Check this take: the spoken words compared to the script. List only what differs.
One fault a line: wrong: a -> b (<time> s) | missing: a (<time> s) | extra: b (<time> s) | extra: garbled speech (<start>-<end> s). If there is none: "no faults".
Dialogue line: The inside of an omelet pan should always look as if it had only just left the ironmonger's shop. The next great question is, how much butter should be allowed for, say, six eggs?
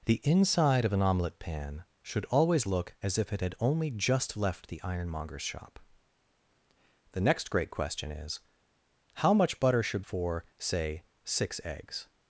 missing: be allowed (10.0 s)